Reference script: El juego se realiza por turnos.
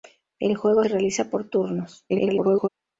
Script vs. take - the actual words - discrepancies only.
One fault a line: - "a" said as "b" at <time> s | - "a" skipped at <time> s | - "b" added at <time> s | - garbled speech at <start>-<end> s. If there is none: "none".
- "se" skipped at 0.8 s
- garbled speech at 2.1-2.7 s